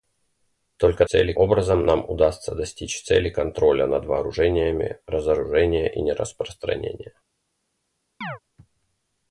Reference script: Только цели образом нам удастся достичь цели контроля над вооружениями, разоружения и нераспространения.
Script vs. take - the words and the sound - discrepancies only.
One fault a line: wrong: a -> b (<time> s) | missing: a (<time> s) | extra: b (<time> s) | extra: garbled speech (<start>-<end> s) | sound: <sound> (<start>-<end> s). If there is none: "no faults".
sound: chirp (8.2-8.4 s)